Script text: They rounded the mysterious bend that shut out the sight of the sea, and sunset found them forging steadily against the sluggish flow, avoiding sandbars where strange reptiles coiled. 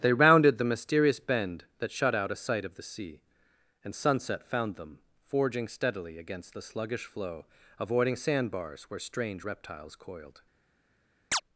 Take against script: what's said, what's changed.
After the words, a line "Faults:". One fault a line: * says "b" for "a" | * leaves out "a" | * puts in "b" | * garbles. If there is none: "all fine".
They rounded the mysterious bend that shut out a sight of the sea, and sunset found them forging steadily against the sluggish flow, avoiding sandbars where strange reptiles coiled.
Faults:
* says "a" for "the"